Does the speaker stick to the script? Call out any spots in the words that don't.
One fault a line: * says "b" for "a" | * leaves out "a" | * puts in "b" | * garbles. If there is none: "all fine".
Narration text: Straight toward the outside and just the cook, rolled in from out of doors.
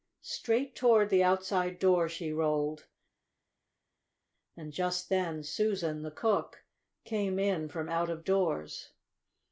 * puts in "door she rolled"
* puts in "then Susan"
* says "came" for "rolled"